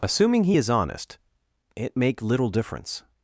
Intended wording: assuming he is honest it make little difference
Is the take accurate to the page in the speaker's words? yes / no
yes